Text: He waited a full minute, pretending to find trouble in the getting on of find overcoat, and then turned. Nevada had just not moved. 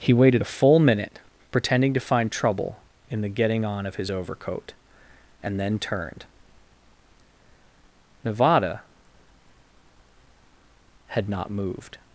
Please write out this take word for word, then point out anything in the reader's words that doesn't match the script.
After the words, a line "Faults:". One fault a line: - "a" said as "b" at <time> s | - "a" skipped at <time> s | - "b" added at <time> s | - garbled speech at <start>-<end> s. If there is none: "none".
He waited a full minute, pretending to find trouble in the getting on of his overcoat, and then turned. Nevada had not moved.
Faults:
- "find" said as "his" at 4.0 s
- "just" skipped at 11.3 s